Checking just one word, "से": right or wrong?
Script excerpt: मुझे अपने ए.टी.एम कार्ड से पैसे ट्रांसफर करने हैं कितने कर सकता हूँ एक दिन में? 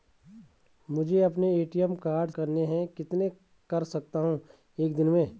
wrong